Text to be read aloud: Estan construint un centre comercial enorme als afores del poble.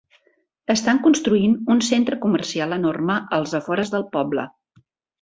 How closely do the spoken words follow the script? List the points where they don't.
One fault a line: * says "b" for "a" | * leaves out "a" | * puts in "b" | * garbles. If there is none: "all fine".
all fine